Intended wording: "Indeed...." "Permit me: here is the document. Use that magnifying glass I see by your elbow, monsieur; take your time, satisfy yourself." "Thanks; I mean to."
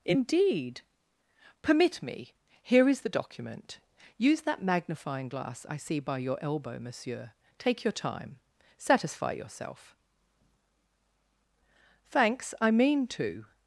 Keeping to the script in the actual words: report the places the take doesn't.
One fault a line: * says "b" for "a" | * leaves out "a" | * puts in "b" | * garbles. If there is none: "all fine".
all fine